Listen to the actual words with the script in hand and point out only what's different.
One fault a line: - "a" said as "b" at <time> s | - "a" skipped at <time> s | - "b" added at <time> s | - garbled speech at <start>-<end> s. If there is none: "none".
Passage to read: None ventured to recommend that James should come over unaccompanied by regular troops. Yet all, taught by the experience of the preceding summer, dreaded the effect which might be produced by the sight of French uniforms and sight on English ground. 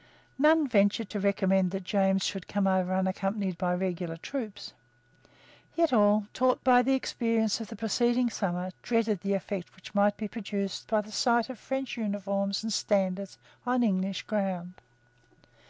- "sight" said as "standards" at 12.7 s